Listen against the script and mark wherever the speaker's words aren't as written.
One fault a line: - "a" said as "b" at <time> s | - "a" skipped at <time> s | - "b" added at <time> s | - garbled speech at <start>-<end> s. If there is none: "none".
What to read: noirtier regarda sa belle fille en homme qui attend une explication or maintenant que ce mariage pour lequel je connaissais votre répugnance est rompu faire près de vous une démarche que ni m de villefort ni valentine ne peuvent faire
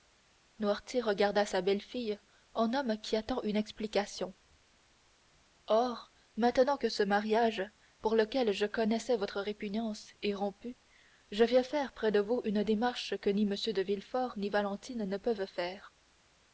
- "je viens" added at 11.3 s